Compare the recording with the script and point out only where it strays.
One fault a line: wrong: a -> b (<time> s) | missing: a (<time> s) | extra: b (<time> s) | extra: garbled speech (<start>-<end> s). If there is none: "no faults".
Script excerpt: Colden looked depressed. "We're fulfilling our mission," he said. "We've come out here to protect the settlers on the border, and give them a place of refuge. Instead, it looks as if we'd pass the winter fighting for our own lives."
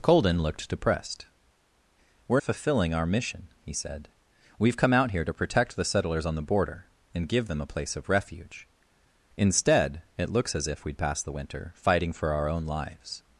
no faults